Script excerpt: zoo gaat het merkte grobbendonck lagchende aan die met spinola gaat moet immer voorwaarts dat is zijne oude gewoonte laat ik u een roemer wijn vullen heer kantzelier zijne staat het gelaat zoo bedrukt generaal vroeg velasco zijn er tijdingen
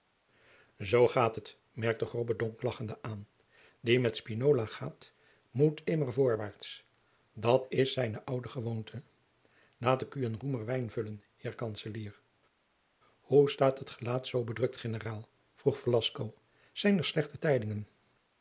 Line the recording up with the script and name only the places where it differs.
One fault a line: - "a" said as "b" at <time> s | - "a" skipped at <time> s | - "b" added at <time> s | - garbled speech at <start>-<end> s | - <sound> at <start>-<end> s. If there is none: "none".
- "zijne" said as "hoe" at 13.2 s
- "slechte" added at 17.0 s